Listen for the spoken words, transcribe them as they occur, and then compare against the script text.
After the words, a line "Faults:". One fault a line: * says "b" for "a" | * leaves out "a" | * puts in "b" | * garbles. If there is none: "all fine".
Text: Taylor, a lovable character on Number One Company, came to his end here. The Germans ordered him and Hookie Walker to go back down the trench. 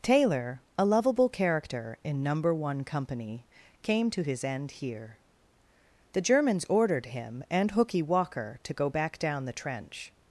Taylor, a lovable character in Number One Company, came to his end here. The Germans ordered him and Hookie Walker to go back down the trench.
Faults:
* says "in" for "on"